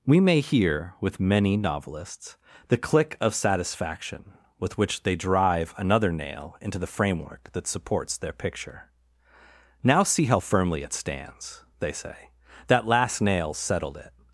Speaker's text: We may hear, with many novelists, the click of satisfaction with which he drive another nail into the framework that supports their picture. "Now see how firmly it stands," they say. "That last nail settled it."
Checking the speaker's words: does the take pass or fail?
fail